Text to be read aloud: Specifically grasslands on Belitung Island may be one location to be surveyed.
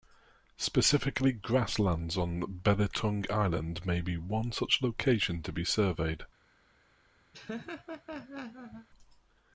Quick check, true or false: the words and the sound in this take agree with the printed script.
false